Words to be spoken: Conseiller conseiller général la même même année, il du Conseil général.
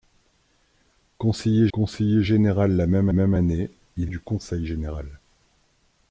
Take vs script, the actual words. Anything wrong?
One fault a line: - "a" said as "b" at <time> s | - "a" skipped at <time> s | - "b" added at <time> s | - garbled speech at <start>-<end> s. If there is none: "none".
none